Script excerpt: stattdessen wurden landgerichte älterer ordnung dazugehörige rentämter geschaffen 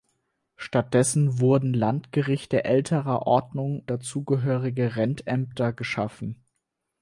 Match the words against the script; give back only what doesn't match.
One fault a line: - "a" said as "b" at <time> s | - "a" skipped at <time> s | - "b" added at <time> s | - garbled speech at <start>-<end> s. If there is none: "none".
none